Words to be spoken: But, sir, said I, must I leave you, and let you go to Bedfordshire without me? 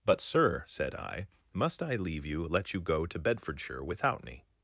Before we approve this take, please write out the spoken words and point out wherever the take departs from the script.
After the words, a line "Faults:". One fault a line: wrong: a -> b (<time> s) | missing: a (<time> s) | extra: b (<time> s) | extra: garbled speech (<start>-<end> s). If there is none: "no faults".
But, sir, said I, must I leave you, let you go to Bedfordshire without me?
Faults:
missing: and (2.5 s)